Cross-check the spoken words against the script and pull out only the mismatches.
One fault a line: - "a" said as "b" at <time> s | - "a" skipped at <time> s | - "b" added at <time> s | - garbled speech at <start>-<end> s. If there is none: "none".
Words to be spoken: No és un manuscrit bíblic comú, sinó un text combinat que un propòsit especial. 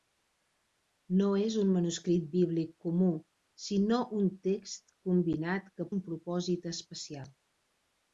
none